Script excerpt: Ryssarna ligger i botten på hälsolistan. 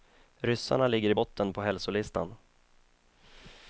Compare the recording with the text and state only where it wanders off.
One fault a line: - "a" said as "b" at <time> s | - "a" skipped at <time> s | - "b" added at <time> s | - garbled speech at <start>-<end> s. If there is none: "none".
none